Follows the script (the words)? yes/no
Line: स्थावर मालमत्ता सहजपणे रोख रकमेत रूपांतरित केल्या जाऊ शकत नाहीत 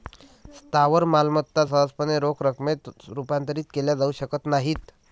yes